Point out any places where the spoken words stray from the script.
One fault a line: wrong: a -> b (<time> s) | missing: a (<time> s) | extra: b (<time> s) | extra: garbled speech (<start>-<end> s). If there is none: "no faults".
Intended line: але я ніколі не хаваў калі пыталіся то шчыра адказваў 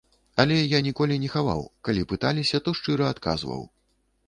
no faults